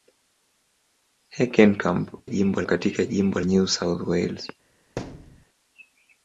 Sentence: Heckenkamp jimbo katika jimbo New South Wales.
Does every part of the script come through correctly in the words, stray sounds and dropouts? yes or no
no